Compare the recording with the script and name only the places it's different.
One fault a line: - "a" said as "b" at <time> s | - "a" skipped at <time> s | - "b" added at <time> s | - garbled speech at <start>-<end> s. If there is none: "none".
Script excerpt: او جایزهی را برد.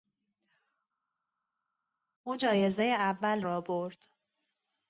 - "اول" added at 2.9 s